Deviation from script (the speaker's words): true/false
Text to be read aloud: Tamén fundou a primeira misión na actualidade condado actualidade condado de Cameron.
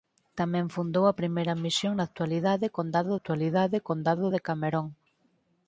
false